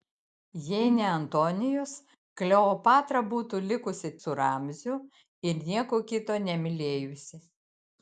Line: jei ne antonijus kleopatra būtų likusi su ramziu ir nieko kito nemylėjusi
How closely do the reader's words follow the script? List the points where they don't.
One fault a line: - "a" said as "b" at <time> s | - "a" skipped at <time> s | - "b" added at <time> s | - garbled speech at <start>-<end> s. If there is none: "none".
none